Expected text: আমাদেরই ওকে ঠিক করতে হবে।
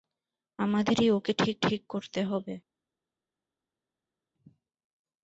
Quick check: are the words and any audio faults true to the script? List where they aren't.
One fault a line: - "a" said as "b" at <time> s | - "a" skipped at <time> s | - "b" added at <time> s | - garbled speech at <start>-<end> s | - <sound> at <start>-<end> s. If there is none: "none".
- "ঠিক" added at 1.6 s